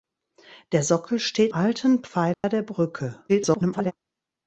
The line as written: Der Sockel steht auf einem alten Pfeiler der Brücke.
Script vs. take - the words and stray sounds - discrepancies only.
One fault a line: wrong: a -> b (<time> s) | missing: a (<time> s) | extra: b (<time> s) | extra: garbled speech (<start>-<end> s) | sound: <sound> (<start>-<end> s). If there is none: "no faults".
missing: auf einem (1.5 s)
sound: dropout (2.3-2.4 s)
extra: garbled speech (3.3-3.9 s)